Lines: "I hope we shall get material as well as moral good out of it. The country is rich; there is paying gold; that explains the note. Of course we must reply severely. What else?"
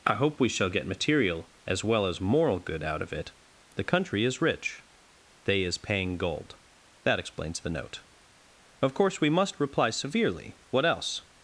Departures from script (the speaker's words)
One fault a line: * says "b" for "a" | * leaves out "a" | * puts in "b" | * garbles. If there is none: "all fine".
* says "they" for "there"